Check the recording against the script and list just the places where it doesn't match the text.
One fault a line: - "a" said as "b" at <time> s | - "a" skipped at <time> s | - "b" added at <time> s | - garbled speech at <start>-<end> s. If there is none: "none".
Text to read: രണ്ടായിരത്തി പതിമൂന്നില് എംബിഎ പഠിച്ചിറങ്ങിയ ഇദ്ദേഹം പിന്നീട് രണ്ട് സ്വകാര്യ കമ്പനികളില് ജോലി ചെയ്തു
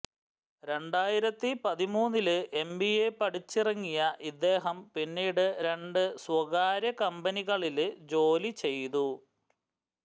none